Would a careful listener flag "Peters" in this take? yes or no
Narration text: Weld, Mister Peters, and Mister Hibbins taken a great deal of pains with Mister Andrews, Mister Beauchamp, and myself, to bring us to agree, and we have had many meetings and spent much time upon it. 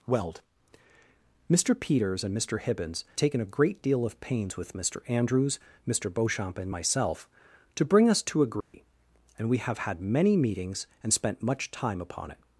no